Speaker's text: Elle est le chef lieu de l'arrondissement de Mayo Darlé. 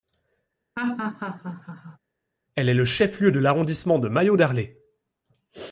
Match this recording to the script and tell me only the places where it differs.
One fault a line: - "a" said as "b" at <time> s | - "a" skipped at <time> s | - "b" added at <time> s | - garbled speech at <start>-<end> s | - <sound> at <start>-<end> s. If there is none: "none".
- laugh at 0.8-2.0 s